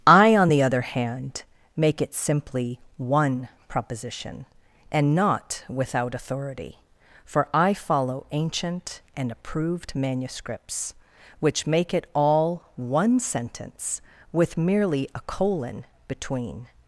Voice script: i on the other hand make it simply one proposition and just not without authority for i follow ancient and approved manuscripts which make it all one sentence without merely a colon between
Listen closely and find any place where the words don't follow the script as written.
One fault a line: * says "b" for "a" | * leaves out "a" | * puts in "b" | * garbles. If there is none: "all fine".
* leaves out "just"
* says "with" for "without"